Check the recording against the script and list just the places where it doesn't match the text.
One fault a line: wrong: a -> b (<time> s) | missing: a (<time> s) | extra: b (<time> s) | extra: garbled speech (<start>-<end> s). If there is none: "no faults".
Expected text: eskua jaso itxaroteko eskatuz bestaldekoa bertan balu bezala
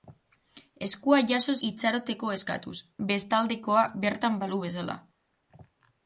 no faults